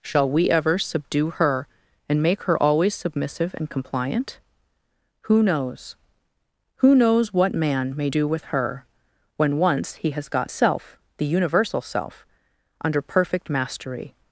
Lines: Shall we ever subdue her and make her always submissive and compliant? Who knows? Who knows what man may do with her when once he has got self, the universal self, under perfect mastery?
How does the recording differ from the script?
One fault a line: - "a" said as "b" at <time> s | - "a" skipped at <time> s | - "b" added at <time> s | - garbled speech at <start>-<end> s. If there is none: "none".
none